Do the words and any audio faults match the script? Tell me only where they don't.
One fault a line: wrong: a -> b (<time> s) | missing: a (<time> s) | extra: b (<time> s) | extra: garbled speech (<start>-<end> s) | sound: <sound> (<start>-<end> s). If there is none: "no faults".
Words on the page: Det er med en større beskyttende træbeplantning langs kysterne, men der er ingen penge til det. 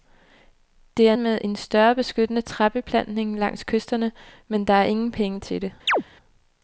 sound: chirp (5.9-6.0 s)